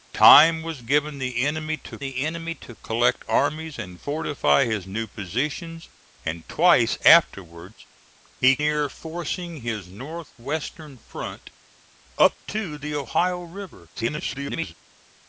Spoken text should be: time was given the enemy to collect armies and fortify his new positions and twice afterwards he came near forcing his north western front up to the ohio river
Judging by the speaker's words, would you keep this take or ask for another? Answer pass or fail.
fail